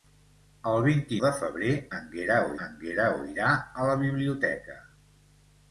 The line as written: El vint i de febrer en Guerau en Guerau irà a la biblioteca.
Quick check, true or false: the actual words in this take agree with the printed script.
true